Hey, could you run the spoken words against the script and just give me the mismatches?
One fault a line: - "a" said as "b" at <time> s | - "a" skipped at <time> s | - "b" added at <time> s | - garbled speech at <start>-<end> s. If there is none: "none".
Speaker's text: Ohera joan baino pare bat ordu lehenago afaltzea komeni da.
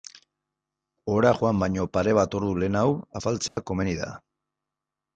none